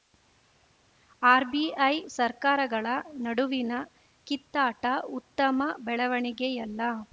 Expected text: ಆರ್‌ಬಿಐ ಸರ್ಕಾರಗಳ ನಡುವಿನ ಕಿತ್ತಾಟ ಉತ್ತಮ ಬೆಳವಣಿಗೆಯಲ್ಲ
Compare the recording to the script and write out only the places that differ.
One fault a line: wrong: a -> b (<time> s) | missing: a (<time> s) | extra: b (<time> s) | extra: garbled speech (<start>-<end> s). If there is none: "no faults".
no faults